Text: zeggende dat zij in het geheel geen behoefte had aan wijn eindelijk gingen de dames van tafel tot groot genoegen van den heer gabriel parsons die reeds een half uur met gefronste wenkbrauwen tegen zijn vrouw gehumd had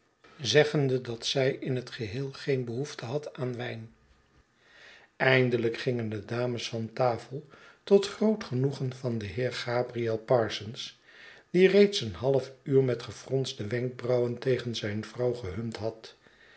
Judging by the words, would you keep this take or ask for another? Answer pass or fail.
pass